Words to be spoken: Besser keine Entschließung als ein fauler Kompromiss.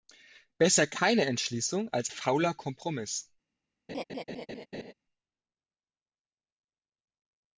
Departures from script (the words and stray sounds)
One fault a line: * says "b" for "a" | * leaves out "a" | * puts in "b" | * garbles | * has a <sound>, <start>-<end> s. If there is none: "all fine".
* leaves out "ein"
* has a laugh, 3.9-4.9 s